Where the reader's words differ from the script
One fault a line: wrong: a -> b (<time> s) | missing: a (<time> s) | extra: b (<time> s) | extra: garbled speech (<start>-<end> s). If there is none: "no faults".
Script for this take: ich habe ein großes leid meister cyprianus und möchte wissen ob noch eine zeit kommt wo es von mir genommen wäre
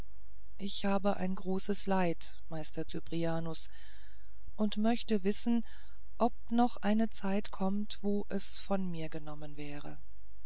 no faults